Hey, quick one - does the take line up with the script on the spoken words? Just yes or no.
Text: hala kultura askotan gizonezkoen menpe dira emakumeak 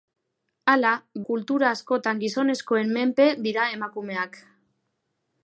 yes